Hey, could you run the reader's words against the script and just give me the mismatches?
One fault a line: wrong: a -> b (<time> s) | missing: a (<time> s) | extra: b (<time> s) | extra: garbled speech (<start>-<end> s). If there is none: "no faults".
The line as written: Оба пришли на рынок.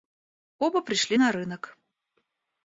no faults